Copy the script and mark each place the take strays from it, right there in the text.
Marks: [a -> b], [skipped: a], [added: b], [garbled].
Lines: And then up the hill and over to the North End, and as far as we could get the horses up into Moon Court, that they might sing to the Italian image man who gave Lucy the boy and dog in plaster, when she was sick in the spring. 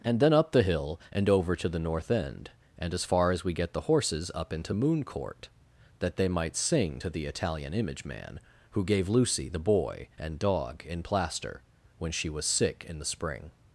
And then up the hill and over to the North End, and as far as we [skipped: could] get the horses up into Moon Court, that they might sing to the Italian image man who gave Lucy the boy and dog in plaster, when she was sick in the spring.